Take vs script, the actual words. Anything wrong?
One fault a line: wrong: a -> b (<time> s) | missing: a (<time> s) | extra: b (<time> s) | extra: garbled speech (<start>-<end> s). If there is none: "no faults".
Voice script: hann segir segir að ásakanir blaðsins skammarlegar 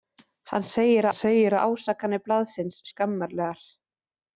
no faults